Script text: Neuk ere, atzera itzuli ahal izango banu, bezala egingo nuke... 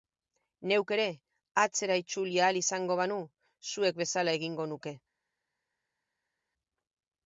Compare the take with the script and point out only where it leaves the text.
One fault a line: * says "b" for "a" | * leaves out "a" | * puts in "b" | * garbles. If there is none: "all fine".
* puts in "zuek"